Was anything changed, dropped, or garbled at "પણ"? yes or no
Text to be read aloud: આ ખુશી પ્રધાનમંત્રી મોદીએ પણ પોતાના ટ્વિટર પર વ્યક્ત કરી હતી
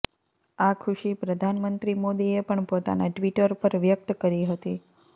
no